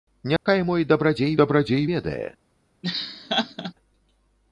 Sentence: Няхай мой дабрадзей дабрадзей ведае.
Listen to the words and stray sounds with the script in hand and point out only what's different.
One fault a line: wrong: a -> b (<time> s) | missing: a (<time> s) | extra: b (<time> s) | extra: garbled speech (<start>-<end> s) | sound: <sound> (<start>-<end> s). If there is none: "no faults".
sound: dropout (0.4-0.5 s)
sound: laugh (2.8-3.7 s)